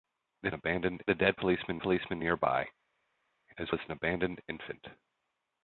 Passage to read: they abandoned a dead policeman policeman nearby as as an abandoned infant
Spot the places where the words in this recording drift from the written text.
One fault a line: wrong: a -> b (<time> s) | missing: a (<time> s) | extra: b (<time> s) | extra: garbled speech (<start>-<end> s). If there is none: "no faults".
no faults